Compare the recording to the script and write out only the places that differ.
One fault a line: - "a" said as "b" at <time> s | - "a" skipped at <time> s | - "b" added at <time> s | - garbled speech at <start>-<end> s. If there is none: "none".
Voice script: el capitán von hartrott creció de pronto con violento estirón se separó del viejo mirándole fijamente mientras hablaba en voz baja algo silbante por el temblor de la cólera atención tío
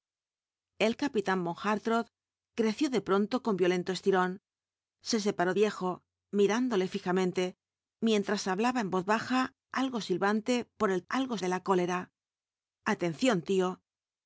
- "del" skipped at 5.5 s
- "temblor" said as "algo" at 11.1 s